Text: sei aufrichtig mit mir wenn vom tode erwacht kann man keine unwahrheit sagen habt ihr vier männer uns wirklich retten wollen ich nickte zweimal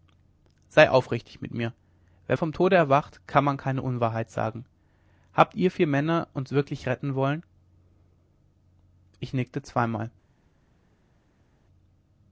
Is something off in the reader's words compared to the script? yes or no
no